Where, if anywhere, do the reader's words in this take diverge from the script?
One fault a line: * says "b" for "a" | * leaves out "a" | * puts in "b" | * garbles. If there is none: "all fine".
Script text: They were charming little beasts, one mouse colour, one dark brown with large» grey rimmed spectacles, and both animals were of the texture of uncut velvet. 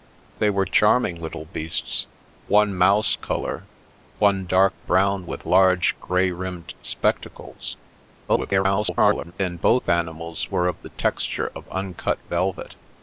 * garbles